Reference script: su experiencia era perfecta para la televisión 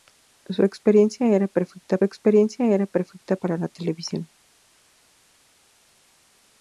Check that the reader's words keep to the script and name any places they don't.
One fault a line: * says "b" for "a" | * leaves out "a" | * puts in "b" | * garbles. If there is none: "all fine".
* puts in "experiencia era perfecta"